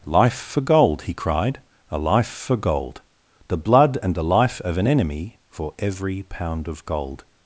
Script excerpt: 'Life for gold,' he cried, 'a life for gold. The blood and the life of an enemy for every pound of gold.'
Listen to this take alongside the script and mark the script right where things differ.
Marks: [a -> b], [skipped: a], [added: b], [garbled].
'Life for gold,' he cried, 'a life for gold. The blood and the life of an enemy for every pound of gold.'